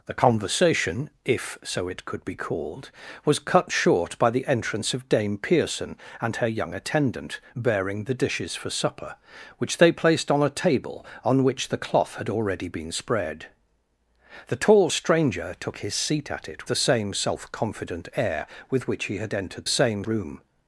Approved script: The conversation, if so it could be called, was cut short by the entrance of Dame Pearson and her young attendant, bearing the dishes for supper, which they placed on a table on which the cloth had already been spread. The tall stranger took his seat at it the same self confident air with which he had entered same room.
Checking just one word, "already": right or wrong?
right